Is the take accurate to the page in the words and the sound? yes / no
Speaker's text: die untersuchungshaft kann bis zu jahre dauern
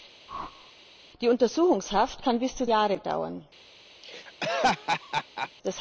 no